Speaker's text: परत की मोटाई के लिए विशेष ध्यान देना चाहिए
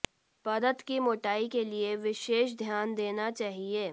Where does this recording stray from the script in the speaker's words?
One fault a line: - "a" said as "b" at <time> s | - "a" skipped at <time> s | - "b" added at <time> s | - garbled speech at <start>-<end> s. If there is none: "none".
none